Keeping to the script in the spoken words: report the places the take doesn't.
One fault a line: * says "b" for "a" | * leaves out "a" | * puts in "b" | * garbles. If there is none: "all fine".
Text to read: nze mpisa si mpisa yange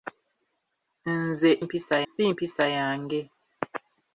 all fine